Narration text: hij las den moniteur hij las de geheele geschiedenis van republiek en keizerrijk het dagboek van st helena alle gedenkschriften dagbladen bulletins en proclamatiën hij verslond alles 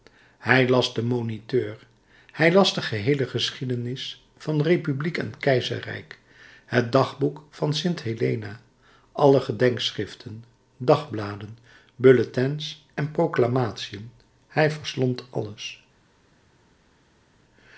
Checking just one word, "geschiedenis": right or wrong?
right